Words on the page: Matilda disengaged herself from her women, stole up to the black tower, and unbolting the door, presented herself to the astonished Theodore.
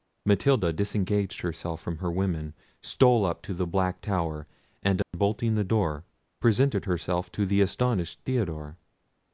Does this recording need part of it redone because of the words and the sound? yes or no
yes